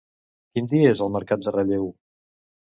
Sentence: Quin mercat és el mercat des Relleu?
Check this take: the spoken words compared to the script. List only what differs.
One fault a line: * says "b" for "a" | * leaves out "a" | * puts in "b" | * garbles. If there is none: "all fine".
* says "dia" for "mercat"
* says "de" for "des"